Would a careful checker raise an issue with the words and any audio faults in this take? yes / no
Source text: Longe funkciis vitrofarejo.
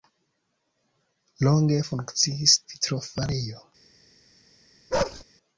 yes